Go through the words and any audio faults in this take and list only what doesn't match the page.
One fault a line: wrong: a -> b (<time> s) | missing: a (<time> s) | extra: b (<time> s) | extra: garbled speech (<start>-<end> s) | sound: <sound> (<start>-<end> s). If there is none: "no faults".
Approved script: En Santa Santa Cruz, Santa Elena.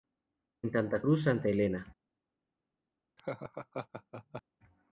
missing: Santa (1.0 s)
sound: laugh (3.2-4.4 s)